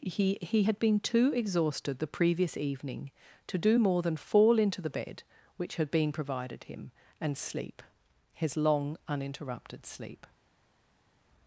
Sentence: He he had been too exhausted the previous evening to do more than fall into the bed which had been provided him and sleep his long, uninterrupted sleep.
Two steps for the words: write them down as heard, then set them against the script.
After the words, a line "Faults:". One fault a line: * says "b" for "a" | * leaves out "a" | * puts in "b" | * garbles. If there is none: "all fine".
He he had been too exhausted the previous evening to do more than fall into the bed which had been provided him and sleep his long, uninterrupted sleep.
Faults:
all fine